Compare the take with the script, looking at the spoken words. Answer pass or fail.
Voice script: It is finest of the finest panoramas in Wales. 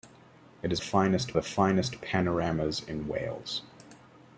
pass